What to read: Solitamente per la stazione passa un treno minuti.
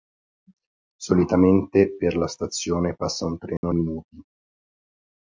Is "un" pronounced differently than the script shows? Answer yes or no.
no